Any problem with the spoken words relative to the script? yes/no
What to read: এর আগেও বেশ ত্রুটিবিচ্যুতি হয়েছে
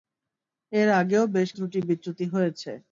no